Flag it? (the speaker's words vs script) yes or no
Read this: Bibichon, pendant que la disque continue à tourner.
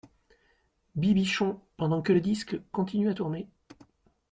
yes